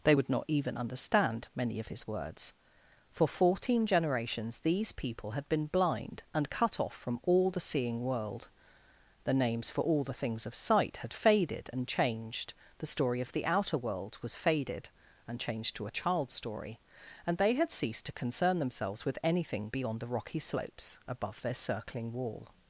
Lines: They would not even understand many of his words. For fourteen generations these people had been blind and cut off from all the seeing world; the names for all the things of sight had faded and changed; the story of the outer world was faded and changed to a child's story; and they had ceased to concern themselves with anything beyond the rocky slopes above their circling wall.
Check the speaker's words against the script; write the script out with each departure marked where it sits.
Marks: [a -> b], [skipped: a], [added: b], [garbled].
They would not even understand many of his words. For fourteen generations these people had been blind and cut off from all the seeing world; the names for all the things of sight had faded and changed; the story of the outer world was faded and changed to a child's story; and they had ceased to concern themselves with anything beyond the rocky slopes above their circling wall.